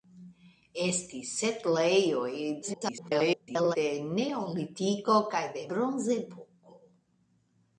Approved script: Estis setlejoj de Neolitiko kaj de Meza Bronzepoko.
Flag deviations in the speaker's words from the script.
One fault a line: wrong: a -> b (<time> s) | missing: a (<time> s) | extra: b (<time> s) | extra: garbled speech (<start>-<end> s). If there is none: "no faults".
extra: garbled speech (2.6-3.8 s)
missing: Meza (5.7 s)